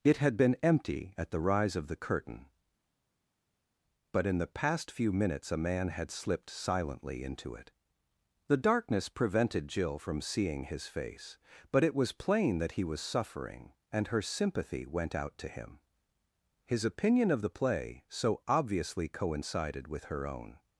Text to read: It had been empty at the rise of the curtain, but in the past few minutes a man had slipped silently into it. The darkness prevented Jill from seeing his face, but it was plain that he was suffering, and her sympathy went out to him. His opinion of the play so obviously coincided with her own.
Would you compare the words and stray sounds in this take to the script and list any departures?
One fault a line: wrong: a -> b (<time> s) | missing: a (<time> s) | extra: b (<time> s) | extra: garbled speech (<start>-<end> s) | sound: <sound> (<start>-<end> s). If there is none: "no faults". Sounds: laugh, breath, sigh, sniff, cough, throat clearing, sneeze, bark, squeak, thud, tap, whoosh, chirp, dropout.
no faults